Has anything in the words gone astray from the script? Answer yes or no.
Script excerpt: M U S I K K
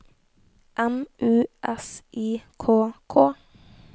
no